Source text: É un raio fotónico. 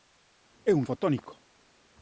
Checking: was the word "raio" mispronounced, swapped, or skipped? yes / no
yes